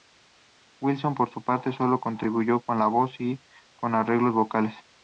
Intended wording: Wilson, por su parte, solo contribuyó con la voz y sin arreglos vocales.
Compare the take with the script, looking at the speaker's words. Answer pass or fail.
fail